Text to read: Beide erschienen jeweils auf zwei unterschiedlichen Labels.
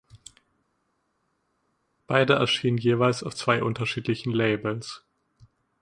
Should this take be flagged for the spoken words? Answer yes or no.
no